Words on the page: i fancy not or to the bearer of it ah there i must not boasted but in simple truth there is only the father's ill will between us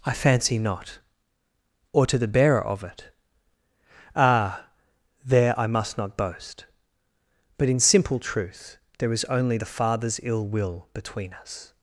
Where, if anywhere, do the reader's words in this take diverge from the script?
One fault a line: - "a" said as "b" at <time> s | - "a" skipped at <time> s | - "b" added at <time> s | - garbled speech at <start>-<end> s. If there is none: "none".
- "boasted" said as "boast" at 6.2 s